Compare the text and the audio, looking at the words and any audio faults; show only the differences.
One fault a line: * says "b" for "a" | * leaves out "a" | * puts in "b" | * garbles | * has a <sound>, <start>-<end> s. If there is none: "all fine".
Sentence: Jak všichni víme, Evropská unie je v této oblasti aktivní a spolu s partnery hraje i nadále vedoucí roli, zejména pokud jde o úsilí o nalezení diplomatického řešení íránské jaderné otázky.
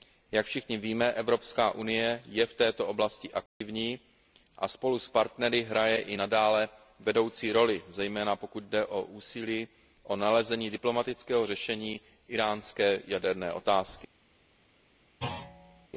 * has a dropout, 3.5-3.6 s
* has a thud, 15.2-15.9 s